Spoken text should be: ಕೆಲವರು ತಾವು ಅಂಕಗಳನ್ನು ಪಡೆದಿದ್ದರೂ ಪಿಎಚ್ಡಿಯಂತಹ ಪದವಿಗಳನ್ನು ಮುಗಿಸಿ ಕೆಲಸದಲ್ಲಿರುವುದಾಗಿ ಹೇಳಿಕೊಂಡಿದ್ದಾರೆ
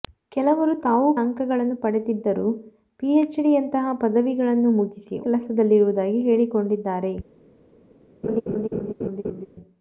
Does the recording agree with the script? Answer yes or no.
yes